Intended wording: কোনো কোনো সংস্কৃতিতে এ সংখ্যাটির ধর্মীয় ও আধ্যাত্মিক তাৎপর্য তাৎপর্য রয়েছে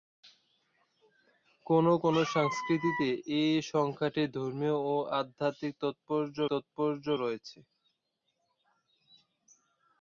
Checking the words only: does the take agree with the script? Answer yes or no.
yes